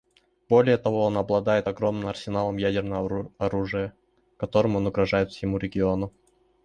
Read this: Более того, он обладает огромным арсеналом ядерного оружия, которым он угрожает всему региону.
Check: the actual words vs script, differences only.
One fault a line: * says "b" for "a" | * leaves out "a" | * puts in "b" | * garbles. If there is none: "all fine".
all fine